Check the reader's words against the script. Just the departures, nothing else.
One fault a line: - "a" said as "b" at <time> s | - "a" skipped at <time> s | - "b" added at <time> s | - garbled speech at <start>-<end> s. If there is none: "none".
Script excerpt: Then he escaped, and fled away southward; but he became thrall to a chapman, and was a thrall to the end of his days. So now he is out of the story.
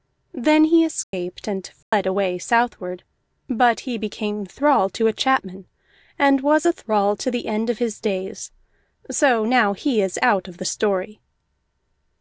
none